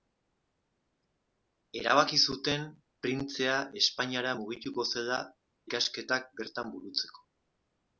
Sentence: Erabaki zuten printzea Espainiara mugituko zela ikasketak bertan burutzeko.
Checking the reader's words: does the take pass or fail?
pass